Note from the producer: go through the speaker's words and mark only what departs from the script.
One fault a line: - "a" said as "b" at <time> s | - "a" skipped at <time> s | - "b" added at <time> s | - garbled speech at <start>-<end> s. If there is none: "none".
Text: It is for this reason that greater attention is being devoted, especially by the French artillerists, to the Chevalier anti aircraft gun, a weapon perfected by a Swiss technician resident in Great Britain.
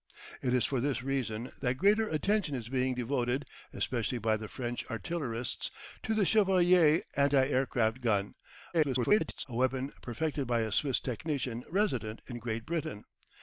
- garbled speech at 8.7-9.5 s